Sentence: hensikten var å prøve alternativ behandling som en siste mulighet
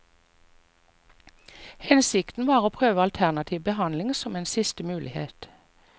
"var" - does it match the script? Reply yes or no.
yes